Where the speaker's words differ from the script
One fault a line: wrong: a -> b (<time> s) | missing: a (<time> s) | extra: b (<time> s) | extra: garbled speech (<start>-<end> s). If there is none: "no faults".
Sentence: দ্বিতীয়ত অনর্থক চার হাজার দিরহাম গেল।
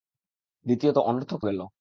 missing: চার হাজার দিরহাম (1.4 s)